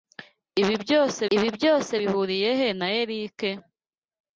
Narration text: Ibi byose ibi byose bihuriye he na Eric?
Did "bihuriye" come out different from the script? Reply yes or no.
no